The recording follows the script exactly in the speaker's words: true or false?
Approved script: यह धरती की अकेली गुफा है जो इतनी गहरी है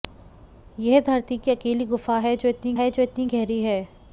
false